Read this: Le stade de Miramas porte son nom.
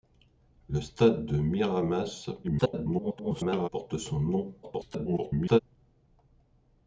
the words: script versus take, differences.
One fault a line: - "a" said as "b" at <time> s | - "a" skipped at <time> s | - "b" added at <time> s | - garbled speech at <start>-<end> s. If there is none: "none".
- garbled speech at 2.4-3.7 s
- garbled speech at 4.6-5.6 s